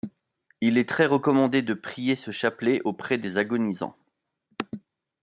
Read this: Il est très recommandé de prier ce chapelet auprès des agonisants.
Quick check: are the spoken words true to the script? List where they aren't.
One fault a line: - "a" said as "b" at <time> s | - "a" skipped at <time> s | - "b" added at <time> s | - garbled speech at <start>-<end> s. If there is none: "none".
none